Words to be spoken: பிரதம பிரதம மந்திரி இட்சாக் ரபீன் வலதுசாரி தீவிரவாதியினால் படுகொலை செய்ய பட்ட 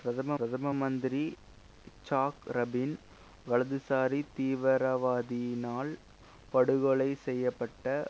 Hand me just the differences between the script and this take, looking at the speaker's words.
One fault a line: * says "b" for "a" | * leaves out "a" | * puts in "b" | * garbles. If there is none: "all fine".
all fine